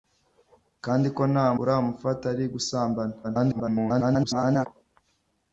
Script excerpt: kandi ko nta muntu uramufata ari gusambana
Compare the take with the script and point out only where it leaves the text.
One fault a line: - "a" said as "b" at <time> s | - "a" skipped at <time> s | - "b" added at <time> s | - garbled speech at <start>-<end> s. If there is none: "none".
- "muntu" skipped at 1.5 s
- garbled speech at 3.2-4.7 s